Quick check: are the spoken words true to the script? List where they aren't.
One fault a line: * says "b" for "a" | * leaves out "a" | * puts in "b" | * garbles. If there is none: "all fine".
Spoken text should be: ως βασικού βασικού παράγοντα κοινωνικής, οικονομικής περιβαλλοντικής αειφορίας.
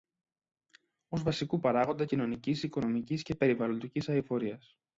* leaves out "βασικού"
* puts in "και"